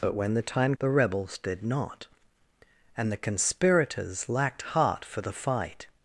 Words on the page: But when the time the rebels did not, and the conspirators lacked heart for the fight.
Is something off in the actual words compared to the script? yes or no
no